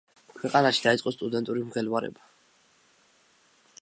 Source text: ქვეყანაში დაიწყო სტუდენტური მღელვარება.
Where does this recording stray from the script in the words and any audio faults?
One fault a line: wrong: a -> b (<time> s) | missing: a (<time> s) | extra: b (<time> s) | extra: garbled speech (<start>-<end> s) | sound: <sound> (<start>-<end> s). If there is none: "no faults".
no faults